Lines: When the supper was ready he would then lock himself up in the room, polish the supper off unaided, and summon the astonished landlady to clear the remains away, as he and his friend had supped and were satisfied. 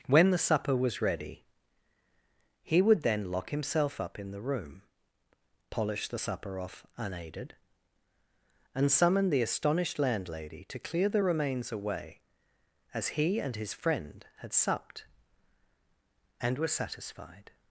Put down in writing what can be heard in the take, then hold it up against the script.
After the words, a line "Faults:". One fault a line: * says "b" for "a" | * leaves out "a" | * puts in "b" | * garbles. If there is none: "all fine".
When the supper was ready he would then lock himself up in the room, polish the supper off unaided, and summon the astonished landlady to clear the remains away, as he and his friend had supped and were satisfied.
Faults:
all fine